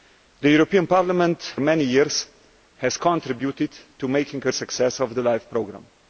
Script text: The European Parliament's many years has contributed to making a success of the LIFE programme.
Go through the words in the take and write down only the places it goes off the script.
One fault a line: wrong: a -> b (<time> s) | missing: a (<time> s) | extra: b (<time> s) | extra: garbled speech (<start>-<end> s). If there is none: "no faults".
no faults